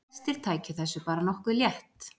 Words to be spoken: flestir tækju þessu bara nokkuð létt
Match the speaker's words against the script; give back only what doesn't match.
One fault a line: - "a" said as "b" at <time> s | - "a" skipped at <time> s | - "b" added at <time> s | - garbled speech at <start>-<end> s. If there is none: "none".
none